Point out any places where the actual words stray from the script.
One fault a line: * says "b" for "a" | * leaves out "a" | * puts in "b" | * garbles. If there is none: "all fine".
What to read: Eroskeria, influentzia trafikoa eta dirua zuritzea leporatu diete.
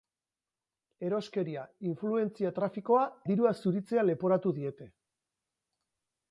* leaves out "eta"